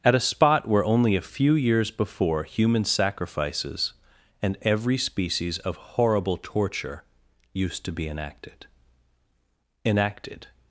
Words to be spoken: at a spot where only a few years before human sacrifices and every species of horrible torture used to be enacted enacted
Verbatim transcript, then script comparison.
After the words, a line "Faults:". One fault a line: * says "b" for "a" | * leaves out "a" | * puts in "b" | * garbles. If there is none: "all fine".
at a spot where only a few years before human sacrifices and every species of horrible torture used to be enacted enacted
Faults:
all fine